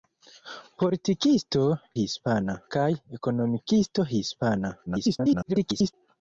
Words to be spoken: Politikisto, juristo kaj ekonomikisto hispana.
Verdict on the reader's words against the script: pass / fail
fail